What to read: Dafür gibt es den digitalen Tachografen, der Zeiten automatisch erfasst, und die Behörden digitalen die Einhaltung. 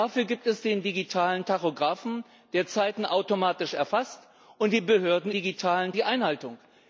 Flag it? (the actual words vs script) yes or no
no